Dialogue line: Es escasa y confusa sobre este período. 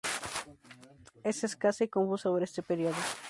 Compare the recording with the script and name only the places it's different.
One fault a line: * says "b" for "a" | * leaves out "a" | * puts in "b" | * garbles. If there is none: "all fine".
all fine